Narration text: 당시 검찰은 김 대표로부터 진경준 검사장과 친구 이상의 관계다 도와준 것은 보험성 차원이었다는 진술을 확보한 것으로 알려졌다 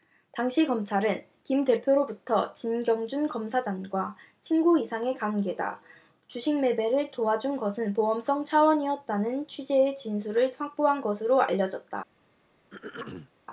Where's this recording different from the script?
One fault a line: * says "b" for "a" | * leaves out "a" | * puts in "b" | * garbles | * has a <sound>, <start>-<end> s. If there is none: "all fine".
* puts in "주식 매매를"
* puts in "취지의"
* has a throat clearing, 12.7-13.3 s